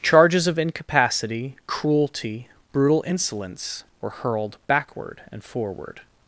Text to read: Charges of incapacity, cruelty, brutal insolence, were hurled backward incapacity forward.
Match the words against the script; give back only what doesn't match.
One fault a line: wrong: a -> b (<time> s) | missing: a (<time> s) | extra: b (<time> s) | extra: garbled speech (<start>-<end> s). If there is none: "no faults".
wrong: incapacity -> and (5.3 s)